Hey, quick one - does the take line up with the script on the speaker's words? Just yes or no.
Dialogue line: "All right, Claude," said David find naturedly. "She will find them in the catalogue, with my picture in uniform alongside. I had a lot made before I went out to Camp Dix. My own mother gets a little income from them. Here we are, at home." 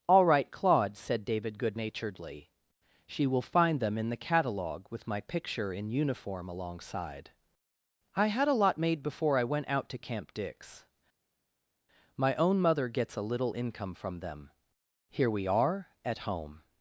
no